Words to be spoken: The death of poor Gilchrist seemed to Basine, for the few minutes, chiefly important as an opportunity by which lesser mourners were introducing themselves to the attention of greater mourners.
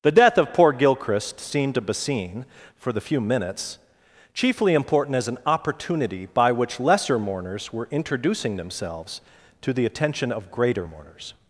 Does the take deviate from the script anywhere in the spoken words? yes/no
no